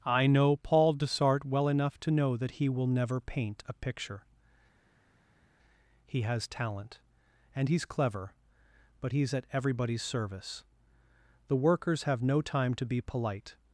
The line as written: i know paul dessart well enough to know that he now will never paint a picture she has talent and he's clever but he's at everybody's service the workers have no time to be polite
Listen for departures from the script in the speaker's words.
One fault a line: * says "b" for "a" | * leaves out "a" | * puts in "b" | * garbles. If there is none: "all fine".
* leaves out "now"
* says "he" for "she"